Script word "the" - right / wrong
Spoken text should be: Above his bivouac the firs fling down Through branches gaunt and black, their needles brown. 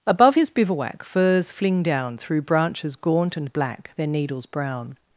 wrong